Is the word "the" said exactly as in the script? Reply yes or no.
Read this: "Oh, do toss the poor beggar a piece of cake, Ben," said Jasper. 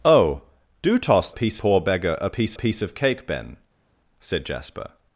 no